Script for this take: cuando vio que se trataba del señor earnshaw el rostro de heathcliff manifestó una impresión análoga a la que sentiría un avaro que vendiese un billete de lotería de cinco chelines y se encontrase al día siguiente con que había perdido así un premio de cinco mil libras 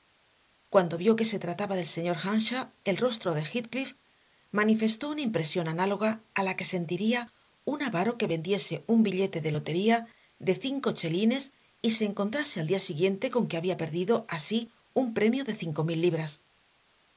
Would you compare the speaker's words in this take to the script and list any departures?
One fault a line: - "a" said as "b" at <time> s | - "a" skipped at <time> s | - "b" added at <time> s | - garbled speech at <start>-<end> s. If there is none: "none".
none